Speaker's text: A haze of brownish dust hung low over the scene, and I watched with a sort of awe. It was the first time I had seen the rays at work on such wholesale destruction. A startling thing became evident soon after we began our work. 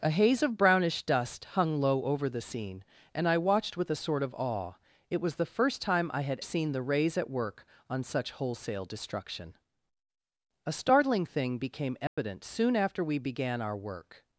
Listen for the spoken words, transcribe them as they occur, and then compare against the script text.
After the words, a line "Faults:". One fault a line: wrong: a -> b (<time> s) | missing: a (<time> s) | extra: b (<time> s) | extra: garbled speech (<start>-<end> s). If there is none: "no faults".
A haze of brownish dust hung low over the scene, and I watched with a sort of awe. It was the first time I had seen the rays at work on such wholesale destruction. A startling thing became evident soon after we began our work.
Faults:
no faults